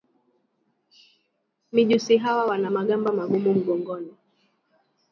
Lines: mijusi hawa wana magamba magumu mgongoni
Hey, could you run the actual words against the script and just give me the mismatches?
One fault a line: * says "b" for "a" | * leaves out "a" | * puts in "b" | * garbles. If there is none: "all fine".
all fine